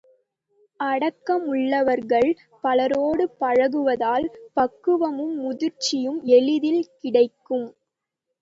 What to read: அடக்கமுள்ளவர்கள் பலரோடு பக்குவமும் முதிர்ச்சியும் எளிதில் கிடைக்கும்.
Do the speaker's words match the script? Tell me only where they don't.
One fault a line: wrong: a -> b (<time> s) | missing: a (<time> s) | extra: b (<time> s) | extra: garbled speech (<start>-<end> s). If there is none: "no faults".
extra: பழகுவதால் (3.4 s)